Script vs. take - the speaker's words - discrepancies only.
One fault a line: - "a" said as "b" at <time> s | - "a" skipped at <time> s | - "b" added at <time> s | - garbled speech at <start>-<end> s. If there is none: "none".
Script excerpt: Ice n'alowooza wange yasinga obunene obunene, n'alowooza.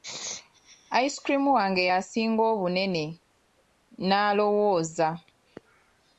- "n'alowooza" said as "cream" at 1.2 s
- "obunene" skipped at 3.0 s